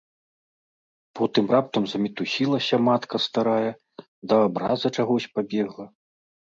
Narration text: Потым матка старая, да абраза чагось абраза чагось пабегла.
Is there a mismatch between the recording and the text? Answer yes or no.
yes